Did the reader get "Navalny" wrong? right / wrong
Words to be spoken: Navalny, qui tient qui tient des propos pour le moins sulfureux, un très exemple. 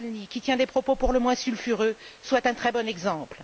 right